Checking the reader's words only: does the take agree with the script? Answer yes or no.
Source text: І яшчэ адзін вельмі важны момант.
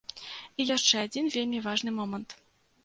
yes